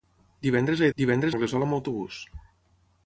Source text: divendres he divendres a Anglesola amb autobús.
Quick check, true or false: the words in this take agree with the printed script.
true